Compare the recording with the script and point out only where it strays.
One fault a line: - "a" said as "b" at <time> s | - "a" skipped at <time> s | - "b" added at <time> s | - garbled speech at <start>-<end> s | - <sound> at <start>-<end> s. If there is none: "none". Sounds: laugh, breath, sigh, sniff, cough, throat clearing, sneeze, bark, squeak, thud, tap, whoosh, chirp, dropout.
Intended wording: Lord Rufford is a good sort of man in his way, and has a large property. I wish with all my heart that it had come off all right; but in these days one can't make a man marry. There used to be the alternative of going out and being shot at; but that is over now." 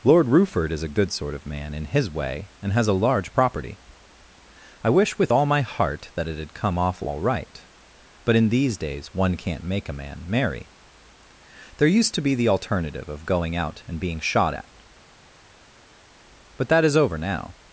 none